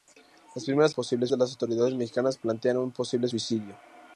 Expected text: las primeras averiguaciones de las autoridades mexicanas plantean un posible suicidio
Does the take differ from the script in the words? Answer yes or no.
yes